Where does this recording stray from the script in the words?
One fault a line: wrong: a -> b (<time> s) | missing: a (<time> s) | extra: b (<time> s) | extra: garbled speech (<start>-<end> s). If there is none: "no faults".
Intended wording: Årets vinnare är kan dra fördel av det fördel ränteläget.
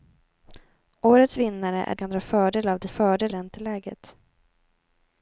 no faults